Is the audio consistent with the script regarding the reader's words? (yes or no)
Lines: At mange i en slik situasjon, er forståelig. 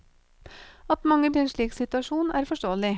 yes